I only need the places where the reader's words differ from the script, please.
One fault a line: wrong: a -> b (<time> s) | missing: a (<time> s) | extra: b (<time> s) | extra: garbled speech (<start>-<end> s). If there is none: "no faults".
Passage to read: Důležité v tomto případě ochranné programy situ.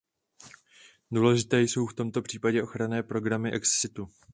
extra: jsou (1.6 s)
extra: ex (3.5 s)